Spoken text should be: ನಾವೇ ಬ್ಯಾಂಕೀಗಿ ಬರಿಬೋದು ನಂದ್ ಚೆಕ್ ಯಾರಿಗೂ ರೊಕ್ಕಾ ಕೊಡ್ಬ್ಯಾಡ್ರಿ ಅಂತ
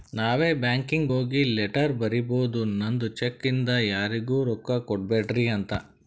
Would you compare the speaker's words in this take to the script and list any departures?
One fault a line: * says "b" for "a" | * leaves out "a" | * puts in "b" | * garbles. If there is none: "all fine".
* puts in "ಹೋಗಿ ಲೆಟರ್"
* puts in "ಇಂದ"